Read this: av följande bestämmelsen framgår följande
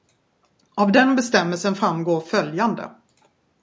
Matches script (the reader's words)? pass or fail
fail